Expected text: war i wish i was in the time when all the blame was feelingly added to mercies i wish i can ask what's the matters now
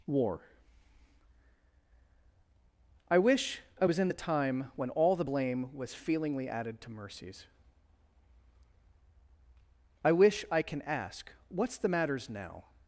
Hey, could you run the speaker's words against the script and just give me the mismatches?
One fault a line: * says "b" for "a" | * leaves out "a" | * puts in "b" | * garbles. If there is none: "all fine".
all fine